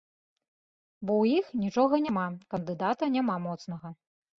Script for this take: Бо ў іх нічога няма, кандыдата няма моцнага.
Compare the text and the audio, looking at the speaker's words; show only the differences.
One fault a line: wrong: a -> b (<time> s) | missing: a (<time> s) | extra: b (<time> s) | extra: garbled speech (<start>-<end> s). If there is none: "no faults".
no faults